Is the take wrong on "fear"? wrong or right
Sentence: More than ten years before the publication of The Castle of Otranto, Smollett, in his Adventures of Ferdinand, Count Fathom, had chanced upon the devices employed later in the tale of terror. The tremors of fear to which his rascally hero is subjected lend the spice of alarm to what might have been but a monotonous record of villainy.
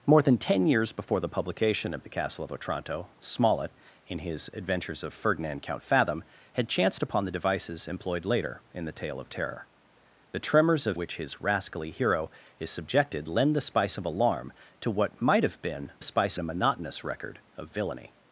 wrong